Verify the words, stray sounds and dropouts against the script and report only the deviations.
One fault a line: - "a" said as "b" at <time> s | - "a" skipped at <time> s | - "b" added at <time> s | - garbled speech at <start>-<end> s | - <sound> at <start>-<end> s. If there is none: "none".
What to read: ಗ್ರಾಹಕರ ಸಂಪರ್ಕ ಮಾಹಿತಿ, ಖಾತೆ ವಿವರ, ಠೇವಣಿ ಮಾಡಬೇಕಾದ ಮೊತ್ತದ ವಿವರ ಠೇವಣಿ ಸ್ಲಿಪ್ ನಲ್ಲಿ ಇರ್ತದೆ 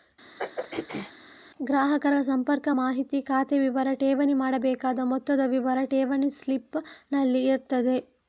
- throat clearing at 0.4-1.1 s